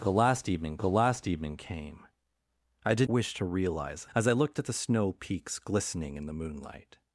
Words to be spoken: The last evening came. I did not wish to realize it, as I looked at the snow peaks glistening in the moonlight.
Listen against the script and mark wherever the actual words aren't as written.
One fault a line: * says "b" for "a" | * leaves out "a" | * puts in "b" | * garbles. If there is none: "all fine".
* puts in "the last evening"
* leaves out "not"
* leaves out "it"